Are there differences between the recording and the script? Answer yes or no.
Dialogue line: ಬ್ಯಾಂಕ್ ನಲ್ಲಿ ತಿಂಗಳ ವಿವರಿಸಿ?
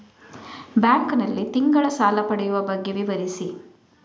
yes